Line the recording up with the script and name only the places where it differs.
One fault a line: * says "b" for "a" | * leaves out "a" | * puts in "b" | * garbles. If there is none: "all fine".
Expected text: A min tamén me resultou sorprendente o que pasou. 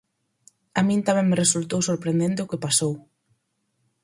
all fine